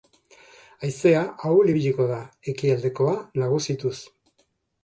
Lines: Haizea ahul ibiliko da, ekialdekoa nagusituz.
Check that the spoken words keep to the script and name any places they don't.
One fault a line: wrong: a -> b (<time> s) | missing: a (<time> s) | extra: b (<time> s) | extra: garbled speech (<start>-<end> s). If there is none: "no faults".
no faults